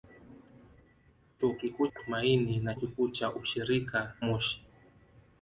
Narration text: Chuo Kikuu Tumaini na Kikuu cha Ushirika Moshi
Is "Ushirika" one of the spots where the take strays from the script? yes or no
no